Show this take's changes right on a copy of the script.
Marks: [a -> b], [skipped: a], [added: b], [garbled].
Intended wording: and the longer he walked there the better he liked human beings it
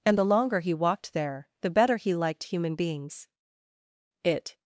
and the longer he walked there the better he liked human beings it